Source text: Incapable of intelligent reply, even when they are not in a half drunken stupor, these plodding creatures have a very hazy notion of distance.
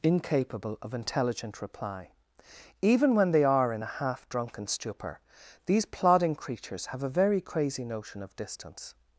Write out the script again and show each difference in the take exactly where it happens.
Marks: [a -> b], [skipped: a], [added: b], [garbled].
Incapable of intelligent reply, even when they are [skipped: not] in a half drunken stupor, these plodding creatures have a very [hazy -> crazy] notion of distance.